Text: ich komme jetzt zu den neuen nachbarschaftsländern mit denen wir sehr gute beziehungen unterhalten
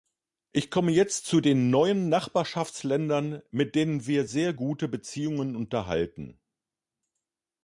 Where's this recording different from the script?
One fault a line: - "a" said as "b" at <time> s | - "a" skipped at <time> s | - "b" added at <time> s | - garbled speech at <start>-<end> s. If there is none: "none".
none